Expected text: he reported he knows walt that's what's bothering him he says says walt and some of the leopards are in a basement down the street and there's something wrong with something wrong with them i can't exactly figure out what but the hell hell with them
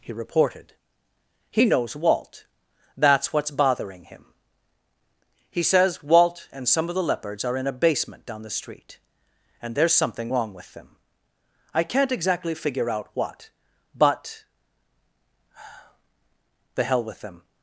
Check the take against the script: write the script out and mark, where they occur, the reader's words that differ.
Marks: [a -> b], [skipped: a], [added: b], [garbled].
he reported he knows walt that's what's bothering him he says [skipped: says] walt and some of the leopards are in a basement down the street and there's something wrong with [skipped: something wrong with] them i can't exactly figure out what but the hell [skipped: hell] with them